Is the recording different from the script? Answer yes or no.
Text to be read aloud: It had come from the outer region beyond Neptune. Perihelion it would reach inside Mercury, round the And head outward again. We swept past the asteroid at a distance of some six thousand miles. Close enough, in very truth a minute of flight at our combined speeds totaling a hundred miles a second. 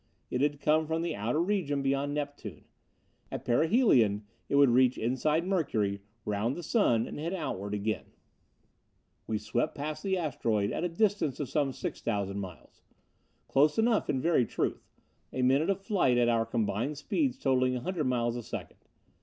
yes